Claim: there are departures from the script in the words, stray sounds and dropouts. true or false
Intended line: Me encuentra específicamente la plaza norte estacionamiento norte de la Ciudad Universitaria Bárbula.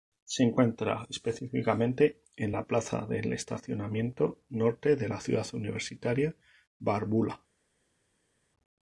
true